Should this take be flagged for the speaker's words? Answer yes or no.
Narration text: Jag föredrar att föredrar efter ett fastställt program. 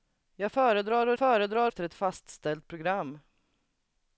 no